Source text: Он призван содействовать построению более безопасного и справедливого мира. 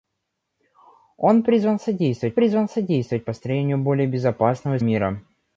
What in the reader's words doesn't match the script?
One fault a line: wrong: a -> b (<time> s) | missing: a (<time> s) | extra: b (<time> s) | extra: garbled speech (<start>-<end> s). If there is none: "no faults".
extra: призван содействовать (2.3 s)
missing: справедливого (4.8 s)